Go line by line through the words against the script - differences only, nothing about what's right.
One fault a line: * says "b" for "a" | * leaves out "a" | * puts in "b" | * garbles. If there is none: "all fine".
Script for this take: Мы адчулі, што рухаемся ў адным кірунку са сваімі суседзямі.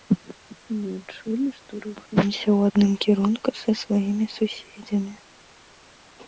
all fine